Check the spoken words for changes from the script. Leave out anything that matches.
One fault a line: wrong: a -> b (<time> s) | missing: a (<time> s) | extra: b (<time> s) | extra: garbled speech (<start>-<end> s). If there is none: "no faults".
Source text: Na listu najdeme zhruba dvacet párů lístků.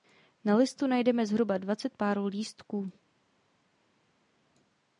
no faults